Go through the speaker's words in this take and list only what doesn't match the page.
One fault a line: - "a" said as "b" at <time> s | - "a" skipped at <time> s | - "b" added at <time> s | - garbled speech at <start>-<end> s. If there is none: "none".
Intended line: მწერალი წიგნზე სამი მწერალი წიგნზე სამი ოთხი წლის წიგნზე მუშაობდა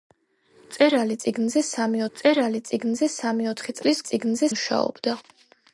none